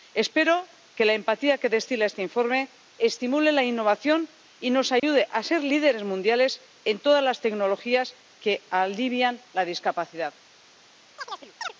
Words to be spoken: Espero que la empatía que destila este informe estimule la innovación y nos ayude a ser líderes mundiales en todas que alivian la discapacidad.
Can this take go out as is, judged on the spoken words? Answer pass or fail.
fail